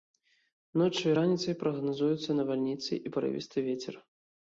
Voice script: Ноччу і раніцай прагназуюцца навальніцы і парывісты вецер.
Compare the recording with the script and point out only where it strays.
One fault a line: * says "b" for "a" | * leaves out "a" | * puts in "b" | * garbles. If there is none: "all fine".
all fine